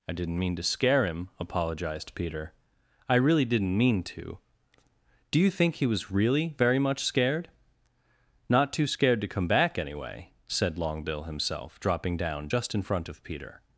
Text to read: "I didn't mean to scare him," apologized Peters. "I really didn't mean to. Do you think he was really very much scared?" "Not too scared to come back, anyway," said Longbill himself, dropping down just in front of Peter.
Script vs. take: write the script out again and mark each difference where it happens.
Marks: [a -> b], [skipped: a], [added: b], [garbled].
"I didn't mean to scare him," apologized [Peters. -> Peter] "I really didn't mean to. Do you think he was really very much scared?" "Not too scared to come back, anyway," said Longbill himself, dropping down just in front of Peter.